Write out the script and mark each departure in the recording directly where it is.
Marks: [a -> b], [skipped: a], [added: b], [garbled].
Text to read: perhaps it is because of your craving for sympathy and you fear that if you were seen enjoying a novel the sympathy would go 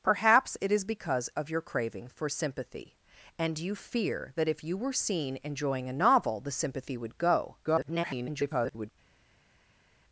perhaps it is because of your craving for sympathy and you fear that if you were seen enjoying a novel the sympathy would go [garbled]